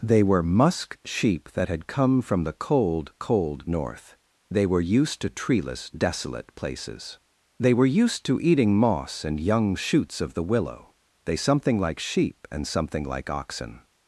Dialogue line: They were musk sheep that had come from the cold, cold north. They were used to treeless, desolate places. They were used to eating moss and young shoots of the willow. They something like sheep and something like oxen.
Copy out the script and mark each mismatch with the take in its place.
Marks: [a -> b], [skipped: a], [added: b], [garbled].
They were musk sheep that had come from the cold, cold north. They were used to treeless, desolate places. They were used to eating moss and young shoots of the willow. They something like sheep and something like oxen.